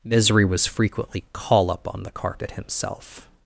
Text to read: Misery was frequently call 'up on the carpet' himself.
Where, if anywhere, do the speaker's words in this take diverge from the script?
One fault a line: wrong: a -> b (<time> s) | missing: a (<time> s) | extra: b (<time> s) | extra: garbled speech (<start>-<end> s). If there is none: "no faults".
no faults